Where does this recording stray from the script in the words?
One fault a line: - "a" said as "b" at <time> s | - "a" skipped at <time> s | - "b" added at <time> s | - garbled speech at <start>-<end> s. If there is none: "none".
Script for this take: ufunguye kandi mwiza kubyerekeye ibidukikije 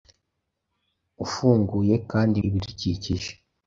- "mwiza kubyerekeye" skipped at 2.4 s